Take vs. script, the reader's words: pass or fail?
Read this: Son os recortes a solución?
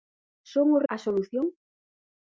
fail